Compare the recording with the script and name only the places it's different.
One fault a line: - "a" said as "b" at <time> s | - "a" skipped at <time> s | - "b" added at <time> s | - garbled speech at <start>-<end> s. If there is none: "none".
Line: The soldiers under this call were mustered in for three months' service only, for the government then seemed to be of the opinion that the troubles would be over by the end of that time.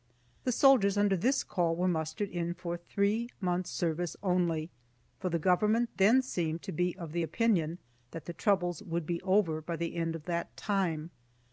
none